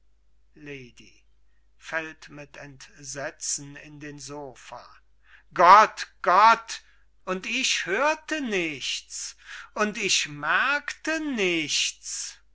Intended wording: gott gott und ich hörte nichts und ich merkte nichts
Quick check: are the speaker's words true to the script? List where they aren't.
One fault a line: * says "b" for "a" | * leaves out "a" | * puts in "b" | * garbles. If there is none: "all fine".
all fine